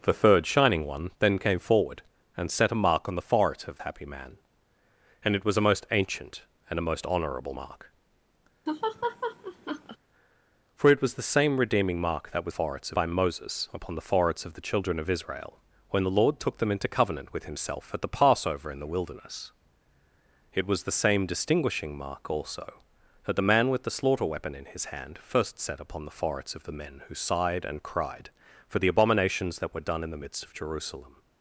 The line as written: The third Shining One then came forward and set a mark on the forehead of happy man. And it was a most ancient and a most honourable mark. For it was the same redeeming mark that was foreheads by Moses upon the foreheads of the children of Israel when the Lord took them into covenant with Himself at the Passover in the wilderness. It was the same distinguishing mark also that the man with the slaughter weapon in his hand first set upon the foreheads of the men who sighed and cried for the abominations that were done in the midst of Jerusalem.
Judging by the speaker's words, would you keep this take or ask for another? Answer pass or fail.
pass